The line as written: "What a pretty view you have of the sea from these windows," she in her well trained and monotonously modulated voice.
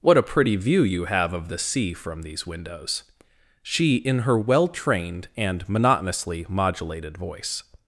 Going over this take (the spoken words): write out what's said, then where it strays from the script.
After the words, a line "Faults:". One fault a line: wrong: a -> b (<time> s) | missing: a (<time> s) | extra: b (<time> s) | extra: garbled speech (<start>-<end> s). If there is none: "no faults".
"What a pretty view you have of the sea from these windows," she in her well trained and monotonously modulated voice.
Faults:
no faults